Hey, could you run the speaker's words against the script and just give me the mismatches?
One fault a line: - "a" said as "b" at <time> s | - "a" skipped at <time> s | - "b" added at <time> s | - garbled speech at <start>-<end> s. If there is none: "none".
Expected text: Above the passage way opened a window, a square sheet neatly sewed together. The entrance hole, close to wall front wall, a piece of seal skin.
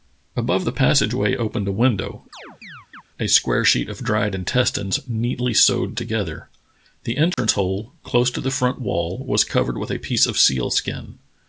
- "of dried intestines" added at 3.9 s
- "wall" said as "the" at 8.4 s
- "was covered with" added at 9.2 s